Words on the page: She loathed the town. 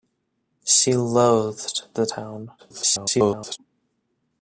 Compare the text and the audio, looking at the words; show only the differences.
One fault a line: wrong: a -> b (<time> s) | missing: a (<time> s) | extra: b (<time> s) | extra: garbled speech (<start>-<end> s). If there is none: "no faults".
extra: garbled speech (2.6-3.6 s)